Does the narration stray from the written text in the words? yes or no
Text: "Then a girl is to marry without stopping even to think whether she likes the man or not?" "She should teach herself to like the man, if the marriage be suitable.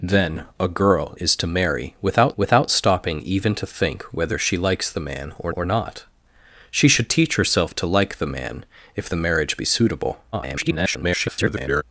yes